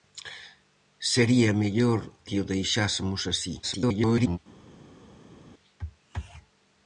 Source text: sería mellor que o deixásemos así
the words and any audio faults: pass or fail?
fail